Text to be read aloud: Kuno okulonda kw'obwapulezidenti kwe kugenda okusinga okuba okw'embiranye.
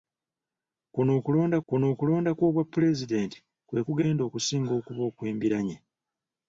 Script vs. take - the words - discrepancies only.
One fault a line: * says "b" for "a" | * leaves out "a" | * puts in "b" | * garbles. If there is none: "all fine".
* puts in "kuno okulonda"